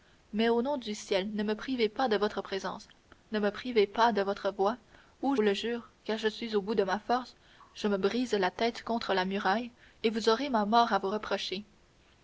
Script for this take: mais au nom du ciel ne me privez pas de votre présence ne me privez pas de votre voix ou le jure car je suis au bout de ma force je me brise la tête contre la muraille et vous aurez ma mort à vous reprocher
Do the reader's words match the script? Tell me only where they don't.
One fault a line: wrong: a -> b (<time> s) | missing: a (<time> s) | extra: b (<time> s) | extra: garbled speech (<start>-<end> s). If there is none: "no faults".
no faults